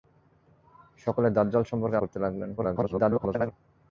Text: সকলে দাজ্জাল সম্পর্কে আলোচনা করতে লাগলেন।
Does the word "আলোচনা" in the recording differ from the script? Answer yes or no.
yes